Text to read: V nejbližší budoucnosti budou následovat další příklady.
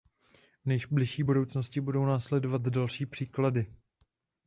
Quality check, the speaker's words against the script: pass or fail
pass